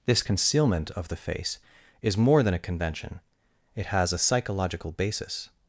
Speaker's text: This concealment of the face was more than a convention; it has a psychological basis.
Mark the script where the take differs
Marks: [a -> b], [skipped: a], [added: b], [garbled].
This concealment of the face [was -> is] more than a convention; it has a psychological basis.